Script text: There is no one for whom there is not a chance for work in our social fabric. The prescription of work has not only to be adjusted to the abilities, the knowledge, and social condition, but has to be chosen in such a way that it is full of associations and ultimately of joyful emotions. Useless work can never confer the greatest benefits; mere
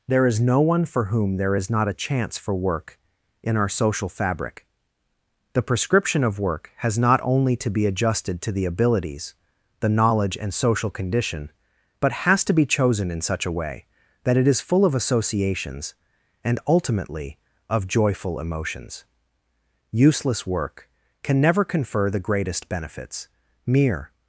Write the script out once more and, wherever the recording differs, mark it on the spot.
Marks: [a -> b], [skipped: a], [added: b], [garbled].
There is no one for whom there is not a chance for work in our social fabric. The prescription of work has not only to be adjusted to the abilities, the knowledge, and social condition, but has to be chosen in such a way that it is full of associations and ultimately of joyful emotions. Useless work can never confer the greatest benefits; mere